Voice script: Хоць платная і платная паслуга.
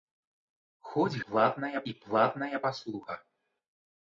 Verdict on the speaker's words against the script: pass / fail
pass